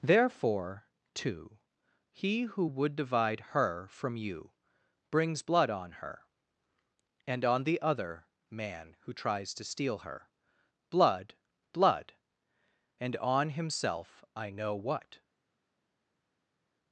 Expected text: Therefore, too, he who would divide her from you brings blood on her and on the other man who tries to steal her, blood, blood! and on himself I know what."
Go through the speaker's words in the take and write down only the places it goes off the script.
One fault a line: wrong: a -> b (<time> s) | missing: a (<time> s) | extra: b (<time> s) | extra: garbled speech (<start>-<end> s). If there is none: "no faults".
no faults